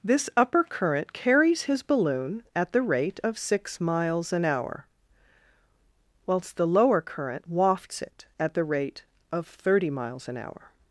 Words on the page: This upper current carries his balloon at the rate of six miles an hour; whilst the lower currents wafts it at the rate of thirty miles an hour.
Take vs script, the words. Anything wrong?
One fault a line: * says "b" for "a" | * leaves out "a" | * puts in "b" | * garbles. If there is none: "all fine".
* says "current" for "currents"